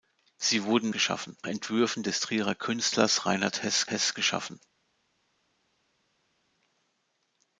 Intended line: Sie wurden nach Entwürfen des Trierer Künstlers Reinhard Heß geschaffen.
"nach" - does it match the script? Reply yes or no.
no